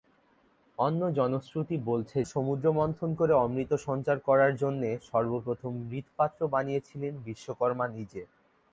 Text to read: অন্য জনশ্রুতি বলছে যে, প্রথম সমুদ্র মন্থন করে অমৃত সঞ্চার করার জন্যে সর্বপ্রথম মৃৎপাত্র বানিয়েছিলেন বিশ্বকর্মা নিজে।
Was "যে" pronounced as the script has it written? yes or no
no